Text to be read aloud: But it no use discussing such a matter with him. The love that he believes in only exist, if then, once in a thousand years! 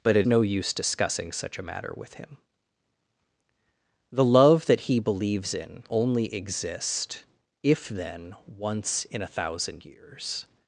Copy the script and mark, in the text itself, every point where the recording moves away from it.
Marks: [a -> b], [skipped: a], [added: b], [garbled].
But it no use discussing such a matter with him. The love that he believes in only exist, if then, once in a thousand years!